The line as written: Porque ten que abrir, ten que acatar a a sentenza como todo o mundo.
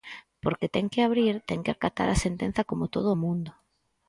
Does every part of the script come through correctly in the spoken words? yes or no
no